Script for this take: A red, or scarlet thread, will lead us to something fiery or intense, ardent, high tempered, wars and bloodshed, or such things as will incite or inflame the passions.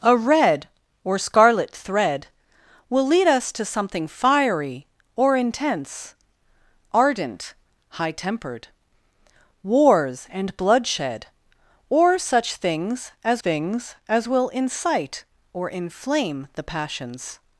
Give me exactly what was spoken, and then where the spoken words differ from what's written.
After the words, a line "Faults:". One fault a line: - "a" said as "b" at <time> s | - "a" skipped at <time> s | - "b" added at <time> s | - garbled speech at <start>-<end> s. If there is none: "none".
A red, or scarlet thread, will lead us to something fiery or intense, ardent, high tempered, wars and bloodshed, or such things as things as will incite or inflame the passions.
Faults:
- "things as" added at 13.4 s